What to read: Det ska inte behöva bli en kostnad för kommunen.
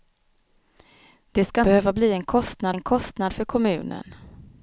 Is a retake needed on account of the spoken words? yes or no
yes